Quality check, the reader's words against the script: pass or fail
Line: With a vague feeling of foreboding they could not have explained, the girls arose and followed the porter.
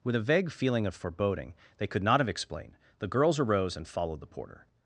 pass